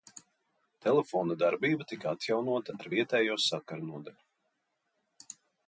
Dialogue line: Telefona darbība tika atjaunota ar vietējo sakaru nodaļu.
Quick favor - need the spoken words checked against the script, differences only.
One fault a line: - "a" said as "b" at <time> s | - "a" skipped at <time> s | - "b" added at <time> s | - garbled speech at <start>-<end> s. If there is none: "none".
none